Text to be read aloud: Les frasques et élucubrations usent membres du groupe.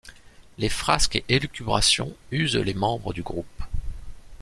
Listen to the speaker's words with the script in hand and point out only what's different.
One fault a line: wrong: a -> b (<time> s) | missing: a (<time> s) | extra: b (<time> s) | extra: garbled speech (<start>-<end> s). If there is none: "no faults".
extra: les (2.5 s)